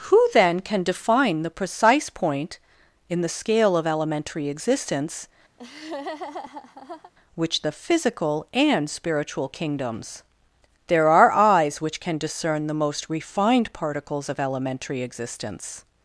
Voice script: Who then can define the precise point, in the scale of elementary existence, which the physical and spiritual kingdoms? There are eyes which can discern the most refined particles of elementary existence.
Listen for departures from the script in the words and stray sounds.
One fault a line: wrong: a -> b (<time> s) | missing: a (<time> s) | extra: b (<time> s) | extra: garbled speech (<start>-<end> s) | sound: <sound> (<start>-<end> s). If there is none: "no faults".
sound: laugh (5.6-7.1 s)